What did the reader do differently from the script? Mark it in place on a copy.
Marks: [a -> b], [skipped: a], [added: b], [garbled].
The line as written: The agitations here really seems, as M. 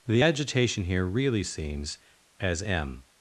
The [agitations -> agitation] here really seems, as M.